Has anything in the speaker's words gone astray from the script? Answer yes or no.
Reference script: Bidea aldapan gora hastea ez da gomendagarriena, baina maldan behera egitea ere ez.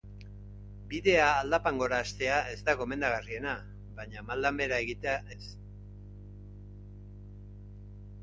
yes